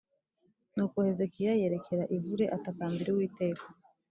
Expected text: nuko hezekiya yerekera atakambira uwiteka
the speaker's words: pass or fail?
fail